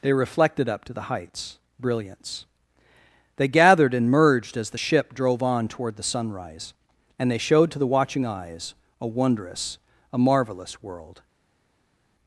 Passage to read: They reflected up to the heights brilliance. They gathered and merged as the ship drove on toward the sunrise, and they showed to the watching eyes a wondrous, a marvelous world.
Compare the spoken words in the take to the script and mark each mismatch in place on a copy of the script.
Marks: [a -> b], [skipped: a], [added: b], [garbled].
They reflected up to the heights brilliance. They gathered and merged as the ship drove on toward the sunrise, and they showed to the watching eyes a wondrous, a marvelous world.